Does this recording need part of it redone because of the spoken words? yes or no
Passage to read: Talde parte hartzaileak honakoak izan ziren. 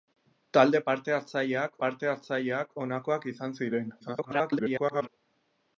yes